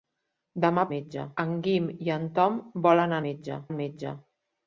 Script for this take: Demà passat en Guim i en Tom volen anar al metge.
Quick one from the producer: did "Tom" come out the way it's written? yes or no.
yes